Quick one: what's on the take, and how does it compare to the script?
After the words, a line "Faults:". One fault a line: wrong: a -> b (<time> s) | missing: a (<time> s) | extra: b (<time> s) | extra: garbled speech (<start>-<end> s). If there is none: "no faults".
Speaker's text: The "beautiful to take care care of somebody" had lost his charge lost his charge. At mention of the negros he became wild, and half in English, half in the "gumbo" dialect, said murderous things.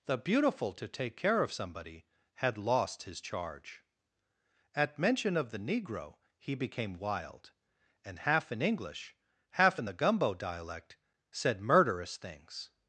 The "beautiful to take care of somebody" had lost his charge. At mention of the negro he became wild, and half in English, half in the "gumbo" dialect, said murderous things.
Faults:
missing: care (1.4 s)
missing: lost his charge (3.8 s)
wrong: negros -> negro (5.6 s)